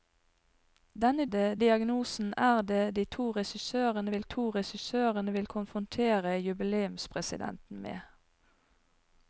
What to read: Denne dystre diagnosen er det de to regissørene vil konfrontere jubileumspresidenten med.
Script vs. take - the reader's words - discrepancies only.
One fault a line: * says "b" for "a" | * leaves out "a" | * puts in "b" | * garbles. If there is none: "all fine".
* says "det" for "dystre"
* puts in "to regissørene vil"